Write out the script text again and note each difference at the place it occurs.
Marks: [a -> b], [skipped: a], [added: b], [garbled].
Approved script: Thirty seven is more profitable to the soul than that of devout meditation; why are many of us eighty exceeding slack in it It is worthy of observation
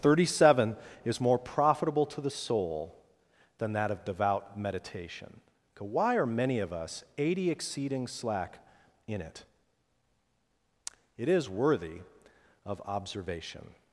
Thirty seven is more profitable to the soul than that of devout meditation; why are many of us eighty exceeding slack in it It is worthy of observation